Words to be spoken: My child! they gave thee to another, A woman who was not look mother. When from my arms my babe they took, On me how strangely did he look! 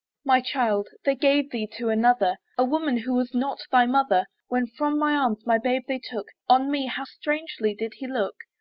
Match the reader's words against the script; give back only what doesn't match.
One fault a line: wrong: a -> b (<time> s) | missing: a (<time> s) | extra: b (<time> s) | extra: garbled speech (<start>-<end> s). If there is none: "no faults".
wrong: look -> thy (3.7 s)